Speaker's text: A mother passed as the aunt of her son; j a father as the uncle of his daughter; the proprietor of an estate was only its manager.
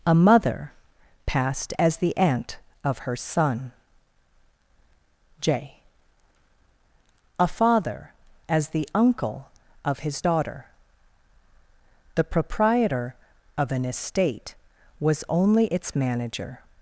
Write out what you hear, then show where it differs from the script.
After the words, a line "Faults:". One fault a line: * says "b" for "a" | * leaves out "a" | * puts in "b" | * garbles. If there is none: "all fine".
A mother passed as the aunt of her son; j a father as the uncle of his daughter; the proprietor of an estate was only its manager.
Faults:
all fine